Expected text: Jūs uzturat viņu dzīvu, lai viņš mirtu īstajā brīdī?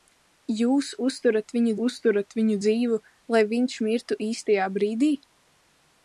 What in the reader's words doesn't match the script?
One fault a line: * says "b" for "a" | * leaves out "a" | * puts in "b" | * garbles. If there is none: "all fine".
* puts in "uzturat viņu"